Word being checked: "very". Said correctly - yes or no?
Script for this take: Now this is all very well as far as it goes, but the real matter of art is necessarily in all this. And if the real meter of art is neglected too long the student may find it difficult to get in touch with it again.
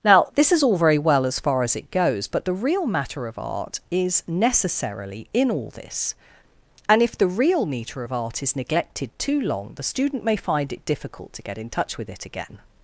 yes